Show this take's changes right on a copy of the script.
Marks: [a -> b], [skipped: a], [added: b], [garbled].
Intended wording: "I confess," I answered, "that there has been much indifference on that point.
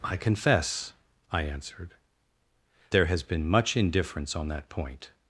"I confess," I answered, [skipped: "that] there has been much indifference on that point.